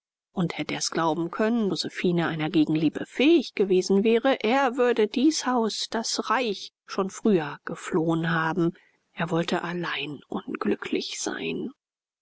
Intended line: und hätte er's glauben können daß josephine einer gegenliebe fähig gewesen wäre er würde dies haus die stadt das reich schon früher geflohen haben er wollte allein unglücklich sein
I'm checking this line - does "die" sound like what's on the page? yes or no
no